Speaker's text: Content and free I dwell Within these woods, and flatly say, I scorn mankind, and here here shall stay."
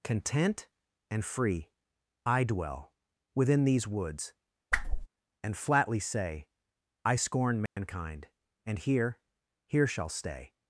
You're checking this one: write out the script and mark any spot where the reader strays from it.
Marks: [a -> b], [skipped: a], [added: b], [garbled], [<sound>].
Content and free I dwell Within these woods, [whoosh] and flatly say, I scorn mankind, [dropout] and here here shall stay."